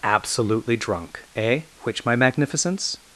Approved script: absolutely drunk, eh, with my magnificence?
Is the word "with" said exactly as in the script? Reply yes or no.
no